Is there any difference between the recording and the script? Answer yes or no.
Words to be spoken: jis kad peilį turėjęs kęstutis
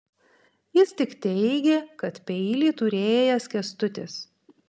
yes